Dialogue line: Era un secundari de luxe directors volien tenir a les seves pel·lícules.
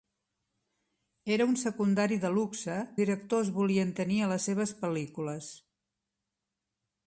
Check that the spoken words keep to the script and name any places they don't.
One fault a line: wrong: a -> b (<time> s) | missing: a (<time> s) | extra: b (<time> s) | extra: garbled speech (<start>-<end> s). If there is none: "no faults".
no faults